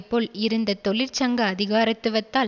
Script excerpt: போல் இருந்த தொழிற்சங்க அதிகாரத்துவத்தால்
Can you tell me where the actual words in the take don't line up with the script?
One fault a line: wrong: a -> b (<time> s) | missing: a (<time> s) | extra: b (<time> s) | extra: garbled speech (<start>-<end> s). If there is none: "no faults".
no faults